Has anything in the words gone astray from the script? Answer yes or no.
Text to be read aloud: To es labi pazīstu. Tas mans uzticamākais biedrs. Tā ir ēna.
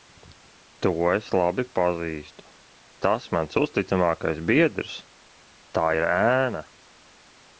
no